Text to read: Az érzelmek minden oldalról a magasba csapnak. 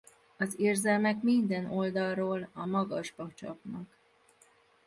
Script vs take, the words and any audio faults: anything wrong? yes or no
no